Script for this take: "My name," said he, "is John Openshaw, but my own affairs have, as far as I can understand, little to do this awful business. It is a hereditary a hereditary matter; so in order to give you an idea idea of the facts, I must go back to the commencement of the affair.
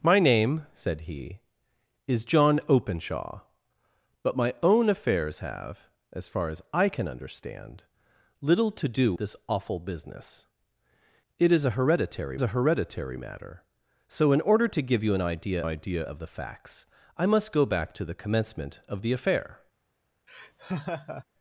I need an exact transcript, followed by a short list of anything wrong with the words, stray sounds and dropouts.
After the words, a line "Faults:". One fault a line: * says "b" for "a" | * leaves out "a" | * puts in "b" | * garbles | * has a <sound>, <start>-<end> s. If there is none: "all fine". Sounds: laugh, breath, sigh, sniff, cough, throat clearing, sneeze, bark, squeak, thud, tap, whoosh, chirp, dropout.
"My name," said he, "is John Openshaw, but my own affairs have, as far as I can understand, little to do this awful business. It is a hereditary a hereditary matter; so in order to give you an idea idea of the facts, I must go back to the commencement of the affair.
Faults:
* has a laugh, 20.3-21.2 s